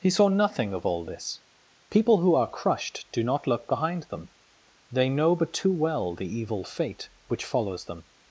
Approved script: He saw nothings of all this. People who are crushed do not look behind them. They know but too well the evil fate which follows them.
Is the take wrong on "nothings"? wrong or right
wrong